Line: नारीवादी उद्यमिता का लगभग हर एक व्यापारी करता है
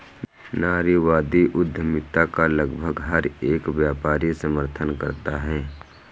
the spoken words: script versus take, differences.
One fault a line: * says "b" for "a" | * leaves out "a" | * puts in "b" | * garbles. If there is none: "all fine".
* puts in "समर्थन"